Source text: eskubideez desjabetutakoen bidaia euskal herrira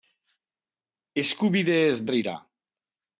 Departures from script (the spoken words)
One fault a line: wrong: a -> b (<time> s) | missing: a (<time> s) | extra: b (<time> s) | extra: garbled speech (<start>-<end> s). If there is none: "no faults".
missing: desjabetutakoen bidaia euskal (2.0 s)